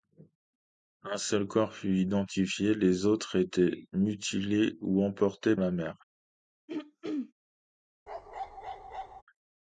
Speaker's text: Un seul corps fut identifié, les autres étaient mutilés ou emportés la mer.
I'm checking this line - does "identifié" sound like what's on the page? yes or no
yes